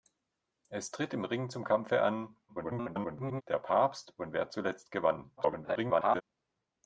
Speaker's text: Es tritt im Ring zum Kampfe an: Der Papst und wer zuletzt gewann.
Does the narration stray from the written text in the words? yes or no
yes